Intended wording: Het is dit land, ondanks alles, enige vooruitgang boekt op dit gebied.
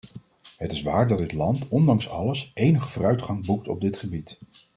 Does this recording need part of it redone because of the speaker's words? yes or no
yes